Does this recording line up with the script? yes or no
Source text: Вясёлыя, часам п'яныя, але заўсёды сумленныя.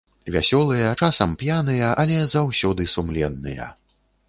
yes